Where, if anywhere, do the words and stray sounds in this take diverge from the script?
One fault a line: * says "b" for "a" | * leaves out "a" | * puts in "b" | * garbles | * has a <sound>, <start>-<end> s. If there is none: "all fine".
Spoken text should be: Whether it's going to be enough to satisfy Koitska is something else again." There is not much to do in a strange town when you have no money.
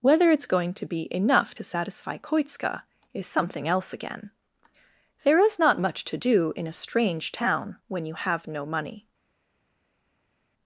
all fine